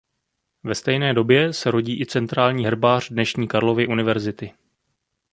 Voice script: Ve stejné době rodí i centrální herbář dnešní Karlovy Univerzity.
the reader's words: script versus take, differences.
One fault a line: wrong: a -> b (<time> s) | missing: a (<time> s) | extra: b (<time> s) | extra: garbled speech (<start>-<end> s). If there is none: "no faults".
extra: se (1.5 s)